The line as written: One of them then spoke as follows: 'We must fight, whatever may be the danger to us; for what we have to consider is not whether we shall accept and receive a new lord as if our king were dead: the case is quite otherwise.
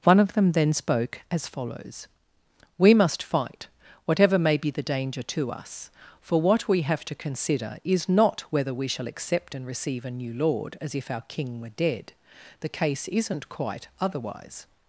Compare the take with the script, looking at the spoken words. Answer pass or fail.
fail